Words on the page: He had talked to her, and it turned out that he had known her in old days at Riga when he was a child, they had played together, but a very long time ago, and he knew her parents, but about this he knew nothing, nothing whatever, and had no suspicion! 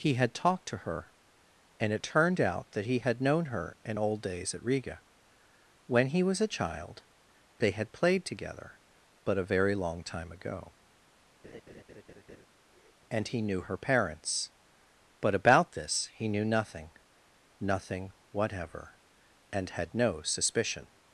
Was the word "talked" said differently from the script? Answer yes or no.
no